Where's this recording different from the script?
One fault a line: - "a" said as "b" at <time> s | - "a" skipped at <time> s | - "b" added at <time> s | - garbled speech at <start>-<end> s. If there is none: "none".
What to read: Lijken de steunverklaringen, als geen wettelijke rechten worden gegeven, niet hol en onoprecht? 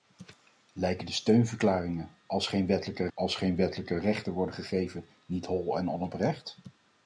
- "als geen wettelijke" added at 3.1 s